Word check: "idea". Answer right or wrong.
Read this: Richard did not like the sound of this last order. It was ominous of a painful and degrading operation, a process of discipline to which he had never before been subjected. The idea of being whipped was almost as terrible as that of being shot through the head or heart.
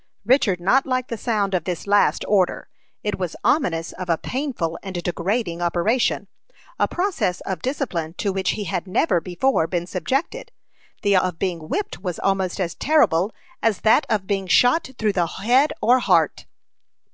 wrong